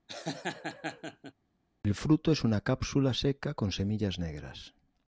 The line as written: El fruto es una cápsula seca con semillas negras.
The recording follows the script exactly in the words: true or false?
true